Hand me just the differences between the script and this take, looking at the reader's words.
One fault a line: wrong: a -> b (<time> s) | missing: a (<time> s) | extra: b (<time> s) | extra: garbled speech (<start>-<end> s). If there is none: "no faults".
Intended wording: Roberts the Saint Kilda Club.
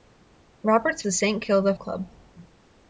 no faults